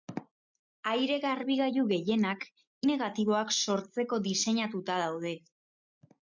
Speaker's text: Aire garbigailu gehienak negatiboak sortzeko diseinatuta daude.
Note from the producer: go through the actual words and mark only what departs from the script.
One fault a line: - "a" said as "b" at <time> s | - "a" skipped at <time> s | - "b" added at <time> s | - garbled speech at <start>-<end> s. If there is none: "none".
none